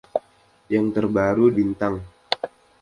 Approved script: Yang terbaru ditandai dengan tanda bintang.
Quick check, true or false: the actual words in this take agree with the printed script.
false